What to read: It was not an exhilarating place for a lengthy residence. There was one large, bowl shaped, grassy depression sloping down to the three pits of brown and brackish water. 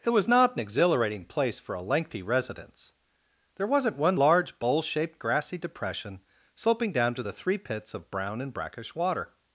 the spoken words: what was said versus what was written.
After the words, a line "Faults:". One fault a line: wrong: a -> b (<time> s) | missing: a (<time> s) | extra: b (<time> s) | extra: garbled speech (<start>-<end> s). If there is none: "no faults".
It was not an exhilarating place for a lengthy residence. There wasn't one large, bowl shaped, grassy depression sloping down to the three pits of brown and brackish water.
Faults:
wrong: was -> wasn't (3.7 s)